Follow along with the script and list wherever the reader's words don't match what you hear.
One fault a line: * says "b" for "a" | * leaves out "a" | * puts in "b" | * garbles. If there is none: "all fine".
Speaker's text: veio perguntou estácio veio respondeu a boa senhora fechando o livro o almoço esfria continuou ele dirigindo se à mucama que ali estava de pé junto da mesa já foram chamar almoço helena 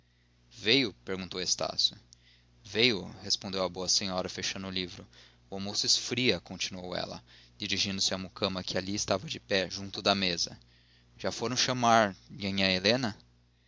* says "ela" for "ele"
* says "nhanhã" for "almoço"